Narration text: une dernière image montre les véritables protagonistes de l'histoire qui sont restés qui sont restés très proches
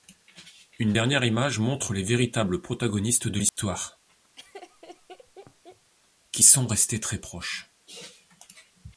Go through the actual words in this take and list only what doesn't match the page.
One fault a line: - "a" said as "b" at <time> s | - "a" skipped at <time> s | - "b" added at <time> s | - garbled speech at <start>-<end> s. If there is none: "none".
- "qui sont restés" skipped at 7.0 s